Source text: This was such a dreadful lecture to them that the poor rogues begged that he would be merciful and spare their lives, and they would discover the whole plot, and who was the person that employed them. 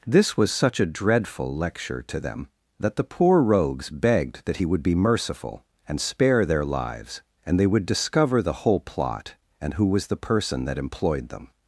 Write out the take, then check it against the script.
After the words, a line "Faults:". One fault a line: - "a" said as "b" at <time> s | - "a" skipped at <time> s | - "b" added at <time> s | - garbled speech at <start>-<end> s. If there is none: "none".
This was such a dreadful lecture to them that the poor rogues begged that he would be merciful and spare their lives, and they would discover the whole plot, and who was the person that employed them.
Faults:
none